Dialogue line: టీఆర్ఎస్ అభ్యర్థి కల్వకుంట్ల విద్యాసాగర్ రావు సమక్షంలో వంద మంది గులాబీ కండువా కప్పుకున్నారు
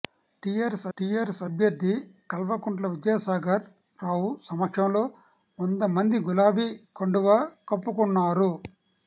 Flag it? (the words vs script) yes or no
yes